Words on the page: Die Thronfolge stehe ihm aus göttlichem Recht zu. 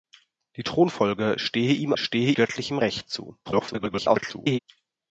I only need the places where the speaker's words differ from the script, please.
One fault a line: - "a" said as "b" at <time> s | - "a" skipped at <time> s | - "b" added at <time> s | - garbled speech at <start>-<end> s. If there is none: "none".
- "aus" said as "stehe" at 2.0 s
- garbled speech at 3.5-4.6 s